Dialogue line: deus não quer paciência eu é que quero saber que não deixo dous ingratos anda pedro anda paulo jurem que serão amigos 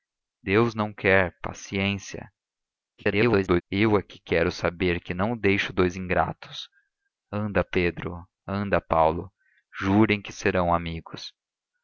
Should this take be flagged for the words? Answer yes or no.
yes